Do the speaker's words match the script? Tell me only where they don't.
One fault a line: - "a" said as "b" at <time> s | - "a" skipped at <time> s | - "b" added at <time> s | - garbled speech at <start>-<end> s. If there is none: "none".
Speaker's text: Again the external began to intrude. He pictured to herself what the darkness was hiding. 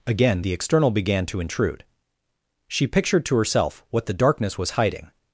- "He" said as "She" at 2.7 s